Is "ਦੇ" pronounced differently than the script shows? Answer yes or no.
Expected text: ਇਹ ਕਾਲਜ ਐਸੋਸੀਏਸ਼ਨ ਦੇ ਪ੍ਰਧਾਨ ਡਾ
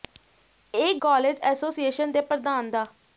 no